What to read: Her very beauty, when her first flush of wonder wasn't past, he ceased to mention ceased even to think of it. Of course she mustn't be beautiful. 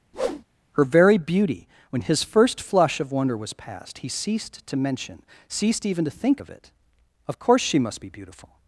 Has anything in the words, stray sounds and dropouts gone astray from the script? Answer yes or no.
yes